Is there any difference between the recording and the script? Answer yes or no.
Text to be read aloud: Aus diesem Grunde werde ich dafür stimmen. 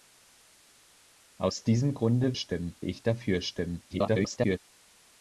yes